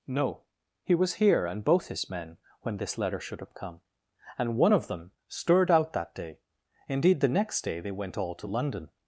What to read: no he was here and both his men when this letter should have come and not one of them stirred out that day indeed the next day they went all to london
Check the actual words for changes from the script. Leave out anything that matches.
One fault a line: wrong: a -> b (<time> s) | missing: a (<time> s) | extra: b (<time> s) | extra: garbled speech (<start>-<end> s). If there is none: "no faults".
missing: not (4.6 s)